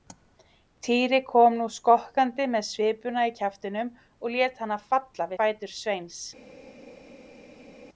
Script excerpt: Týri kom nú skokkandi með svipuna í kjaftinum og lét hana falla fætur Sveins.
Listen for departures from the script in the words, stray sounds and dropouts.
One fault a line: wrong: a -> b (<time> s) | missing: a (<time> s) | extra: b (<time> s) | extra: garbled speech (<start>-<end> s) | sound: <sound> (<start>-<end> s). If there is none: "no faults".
no faults